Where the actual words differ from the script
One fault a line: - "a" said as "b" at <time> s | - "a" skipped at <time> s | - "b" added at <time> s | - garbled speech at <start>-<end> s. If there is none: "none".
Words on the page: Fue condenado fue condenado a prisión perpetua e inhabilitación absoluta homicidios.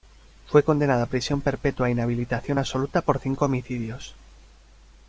- "fue condenado" skipped at 1.0 s
- "por cinco" added at 3.0 s